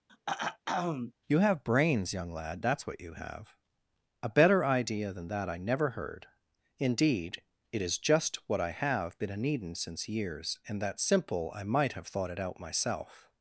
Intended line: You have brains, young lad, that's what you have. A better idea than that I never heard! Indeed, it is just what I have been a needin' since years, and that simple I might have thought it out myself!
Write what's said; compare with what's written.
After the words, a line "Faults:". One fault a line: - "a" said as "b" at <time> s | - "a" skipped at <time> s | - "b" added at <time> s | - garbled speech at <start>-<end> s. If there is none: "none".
You have brains, young lad, that's what you have. A better idea than that I never heard! Indeed, it is just what I have been a needin' since years, and that simple I might have thought it out myself!
Faults:
none